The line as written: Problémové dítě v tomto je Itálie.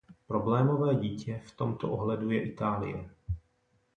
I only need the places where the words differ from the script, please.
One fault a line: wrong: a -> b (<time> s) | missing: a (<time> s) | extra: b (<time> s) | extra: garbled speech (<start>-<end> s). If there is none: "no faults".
extra: ohledu (1.9 s)